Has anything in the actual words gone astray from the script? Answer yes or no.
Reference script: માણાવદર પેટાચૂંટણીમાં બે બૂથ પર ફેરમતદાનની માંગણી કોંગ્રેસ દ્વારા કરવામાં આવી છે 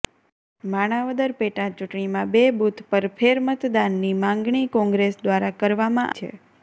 yes